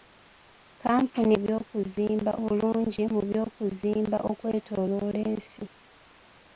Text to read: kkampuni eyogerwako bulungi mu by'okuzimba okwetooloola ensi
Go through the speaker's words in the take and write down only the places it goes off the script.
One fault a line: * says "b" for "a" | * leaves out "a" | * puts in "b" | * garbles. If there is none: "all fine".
* says "by'okuzimba" for "eyogerwako"